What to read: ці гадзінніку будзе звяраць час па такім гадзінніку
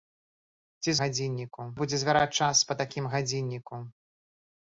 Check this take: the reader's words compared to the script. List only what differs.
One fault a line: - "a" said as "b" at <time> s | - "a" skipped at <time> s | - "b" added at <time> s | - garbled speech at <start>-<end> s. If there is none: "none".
none